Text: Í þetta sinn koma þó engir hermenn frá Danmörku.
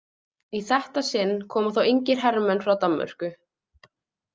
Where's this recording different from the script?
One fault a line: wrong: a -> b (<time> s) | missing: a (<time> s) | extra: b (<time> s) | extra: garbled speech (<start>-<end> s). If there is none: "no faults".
no faults